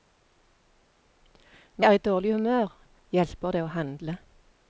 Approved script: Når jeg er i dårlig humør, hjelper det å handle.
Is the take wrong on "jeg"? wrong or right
wrong